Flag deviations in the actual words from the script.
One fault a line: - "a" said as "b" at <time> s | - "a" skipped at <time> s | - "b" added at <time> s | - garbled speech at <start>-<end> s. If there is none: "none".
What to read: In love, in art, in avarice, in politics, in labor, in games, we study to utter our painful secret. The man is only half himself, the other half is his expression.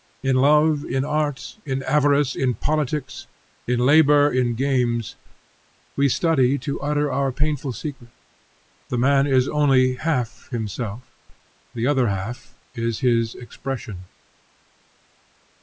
none